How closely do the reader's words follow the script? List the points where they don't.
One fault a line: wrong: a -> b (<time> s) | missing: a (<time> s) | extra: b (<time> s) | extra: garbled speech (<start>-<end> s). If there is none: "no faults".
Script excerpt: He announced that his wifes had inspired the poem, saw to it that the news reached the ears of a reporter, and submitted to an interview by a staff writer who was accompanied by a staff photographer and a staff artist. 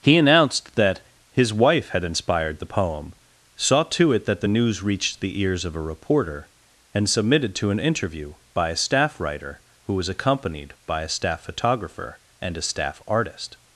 wrong: wifes -> wife (1.5 s)